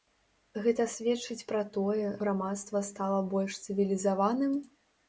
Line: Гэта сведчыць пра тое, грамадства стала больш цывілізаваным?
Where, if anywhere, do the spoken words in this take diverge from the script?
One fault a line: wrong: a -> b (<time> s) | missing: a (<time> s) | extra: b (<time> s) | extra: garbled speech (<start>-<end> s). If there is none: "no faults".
no faults